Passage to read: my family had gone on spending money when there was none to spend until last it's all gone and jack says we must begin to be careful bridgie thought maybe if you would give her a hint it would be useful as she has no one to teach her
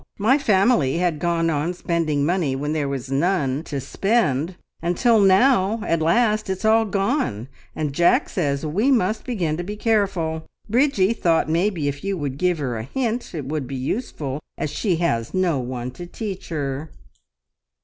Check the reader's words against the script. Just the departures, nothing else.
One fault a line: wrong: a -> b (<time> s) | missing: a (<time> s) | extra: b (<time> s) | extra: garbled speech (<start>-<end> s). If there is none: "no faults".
extra: now at (5.2 s)